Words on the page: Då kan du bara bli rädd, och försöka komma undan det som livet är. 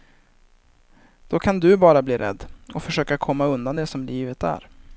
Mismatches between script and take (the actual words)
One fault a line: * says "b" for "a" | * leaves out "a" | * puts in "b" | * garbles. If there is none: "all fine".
all fine